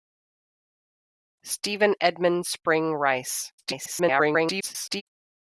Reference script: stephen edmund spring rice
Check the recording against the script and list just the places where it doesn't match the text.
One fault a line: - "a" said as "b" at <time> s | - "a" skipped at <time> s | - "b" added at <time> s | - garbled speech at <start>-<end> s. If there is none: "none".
- garbled speech at 3.6-5.0 s